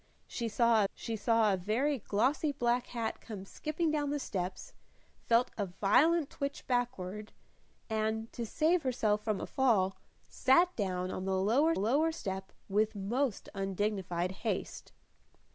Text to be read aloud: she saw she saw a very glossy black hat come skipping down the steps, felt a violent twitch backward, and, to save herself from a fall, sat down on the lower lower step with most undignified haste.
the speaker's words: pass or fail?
pass